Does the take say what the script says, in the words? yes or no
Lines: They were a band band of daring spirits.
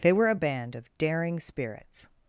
no